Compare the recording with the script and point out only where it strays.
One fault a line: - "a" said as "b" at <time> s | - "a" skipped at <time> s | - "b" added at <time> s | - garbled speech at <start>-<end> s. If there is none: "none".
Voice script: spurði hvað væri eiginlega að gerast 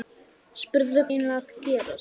- "hvað væri" skipped at 1.0 s